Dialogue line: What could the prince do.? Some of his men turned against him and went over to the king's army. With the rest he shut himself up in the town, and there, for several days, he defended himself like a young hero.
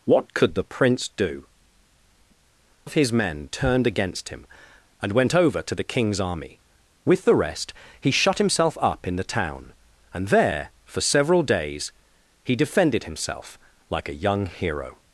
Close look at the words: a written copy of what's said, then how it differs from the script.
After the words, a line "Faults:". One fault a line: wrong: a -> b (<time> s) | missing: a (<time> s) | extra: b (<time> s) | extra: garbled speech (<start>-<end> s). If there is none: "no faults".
What could the prince do.? Of his men turned against him and went over to the king's army. With the rest he shut himself up in the town, and there, for several days, he defended himself like a young hero.
Faults:
missing: Some (1.4 s)